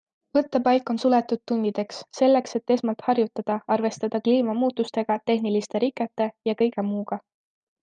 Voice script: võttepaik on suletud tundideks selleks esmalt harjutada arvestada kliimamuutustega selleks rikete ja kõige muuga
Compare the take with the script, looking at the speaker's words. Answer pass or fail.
fail